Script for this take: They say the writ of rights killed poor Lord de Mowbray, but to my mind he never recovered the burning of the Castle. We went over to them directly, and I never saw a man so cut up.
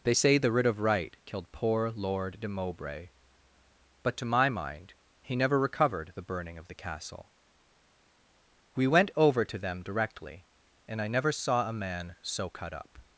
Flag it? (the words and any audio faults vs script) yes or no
yes